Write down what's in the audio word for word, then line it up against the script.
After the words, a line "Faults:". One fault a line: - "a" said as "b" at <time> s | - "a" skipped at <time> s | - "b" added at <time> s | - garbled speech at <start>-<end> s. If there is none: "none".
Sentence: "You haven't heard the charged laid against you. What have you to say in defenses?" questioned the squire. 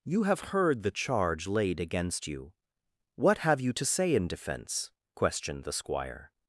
"You have heard the charge laid against you. What have you to say in defense?" questioned the squire.
Faults:
- "haven't" said as "have" at 0.2 s
- "charged" said as "charge" at 0.9 s
- "defenses" said as "defense" at 4.3 s